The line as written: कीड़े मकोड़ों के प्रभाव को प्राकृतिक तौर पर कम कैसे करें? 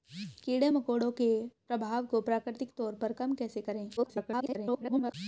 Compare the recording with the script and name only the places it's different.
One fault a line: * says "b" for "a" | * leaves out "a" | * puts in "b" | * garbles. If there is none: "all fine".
* garbles